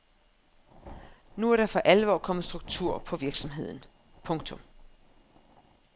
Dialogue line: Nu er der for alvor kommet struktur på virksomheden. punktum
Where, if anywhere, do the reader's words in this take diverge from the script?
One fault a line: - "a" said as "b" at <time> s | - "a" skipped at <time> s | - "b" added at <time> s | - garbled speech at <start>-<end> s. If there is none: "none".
none